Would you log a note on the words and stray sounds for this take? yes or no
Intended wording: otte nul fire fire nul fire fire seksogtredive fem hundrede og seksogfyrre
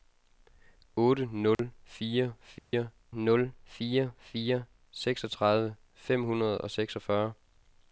yes